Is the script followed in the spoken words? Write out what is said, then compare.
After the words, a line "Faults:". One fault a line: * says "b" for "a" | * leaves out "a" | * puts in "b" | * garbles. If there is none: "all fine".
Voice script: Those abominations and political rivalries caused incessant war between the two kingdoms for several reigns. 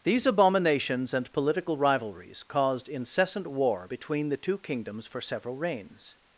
These abominations and political rivalries caused incessant war between the two kingdoms for several reigns.
Faults:
* says "These" for "Those"